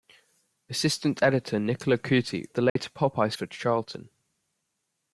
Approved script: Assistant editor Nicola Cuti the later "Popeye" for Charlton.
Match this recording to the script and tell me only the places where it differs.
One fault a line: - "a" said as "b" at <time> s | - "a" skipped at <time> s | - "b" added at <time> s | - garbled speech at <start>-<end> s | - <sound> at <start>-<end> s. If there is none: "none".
- dropout at 2.7-2.8 s